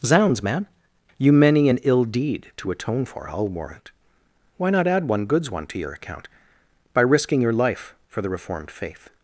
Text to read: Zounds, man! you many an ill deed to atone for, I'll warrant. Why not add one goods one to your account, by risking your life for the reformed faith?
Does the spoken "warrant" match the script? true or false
true